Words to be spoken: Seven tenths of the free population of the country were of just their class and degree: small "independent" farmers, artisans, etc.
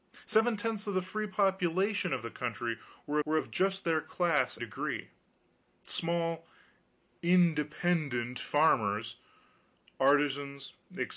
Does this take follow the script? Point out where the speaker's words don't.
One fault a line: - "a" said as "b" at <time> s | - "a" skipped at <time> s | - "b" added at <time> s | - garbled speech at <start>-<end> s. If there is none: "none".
- "were" added at 3.2 s
- "and" skipped at 4.6 s